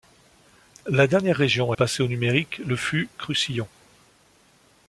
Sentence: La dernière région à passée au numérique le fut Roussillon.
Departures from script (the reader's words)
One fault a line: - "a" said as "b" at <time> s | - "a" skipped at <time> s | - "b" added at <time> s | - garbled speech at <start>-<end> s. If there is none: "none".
none